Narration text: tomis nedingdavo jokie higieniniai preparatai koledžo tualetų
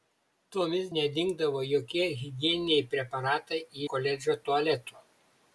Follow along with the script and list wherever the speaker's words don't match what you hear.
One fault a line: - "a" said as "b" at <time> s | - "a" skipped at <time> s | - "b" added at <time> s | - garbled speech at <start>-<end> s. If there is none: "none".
none